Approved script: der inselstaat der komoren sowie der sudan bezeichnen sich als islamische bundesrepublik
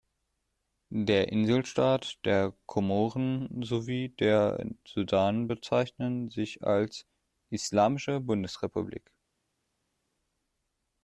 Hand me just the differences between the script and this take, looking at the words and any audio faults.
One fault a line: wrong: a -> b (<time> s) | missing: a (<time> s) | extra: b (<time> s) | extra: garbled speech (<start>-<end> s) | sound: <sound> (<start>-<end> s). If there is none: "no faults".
no faults